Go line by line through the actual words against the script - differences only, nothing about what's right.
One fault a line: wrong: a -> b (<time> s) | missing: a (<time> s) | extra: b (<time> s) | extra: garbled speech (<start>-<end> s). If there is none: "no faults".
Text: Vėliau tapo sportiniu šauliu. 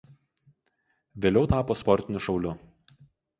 no faults